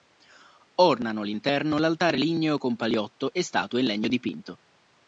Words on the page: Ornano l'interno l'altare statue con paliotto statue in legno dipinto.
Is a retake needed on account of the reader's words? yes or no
yes